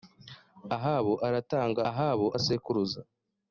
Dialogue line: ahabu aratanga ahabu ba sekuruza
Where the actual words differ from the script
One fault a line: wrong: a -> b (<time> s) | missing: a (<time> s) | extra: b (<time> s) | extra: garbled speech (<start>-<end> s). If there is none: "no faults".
no faults